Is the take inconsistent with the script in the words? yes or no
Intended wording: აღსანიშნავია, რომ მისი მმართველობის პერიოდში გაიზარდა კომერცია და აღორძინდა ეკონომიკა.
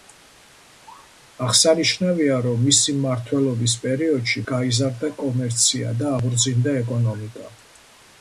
no